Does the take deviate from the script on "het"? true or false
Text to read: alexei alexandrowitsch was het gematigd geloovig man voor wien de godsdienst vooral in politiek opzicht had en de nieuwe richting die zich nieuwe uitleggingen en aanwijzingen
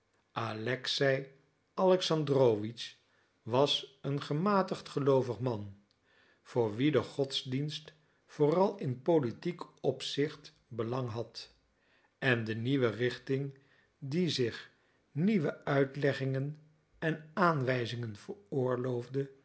true